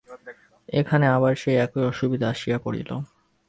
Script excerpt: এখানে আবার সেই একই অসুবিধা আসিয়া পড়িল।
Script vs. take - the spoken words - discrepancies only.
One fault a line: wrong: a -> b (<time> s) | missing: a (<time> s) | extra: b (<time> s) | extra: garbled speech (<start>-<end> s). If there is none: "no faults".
no faults